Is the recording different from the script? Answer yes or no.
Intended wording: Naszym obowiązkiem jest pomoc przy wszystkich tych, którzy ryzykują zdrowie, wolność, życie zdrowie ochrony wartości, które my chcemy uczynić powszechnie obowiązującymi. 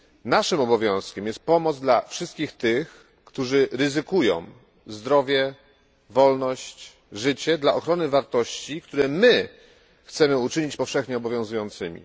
yes